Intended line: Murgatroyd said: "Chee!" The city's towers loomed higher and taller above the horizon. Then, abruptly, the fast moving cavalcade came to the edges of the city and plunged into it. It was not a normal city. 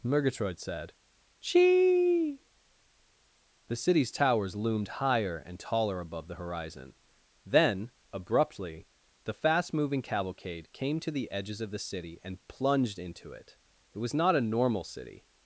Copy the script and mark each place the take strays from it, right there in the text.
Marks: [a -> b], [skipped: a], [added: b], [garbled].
Murgatroyd said: "Chee!" The city's towers loomed higher and taller above the horizon. Then, abruptly, the fast moving cavalcade came to the edges of the city and plunged into it. It was not a normal city.